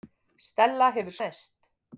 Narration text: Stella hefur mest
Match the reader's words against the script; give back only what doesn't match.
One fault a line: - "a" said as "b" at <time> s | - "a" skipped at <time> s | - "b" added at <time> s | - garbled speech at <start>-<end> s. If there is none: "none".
none